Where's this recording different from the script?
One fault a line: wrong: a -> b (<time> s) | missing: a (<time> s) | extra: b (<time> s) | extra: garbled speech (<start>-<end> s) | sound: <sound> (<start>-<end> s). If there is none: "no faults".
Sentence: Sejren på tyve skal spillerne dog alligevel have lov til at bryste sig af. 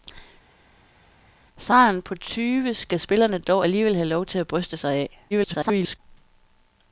extra: garbled speech (5.3-6.0 s)